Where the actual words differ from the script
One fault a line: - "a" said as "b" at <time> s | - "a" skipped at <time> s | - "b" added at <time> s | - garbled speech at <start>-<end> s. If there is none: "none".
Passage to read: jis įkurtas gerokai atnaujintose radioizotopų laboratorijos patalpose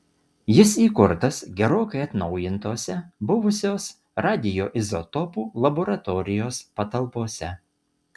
- "buvusios" added at 3.3 s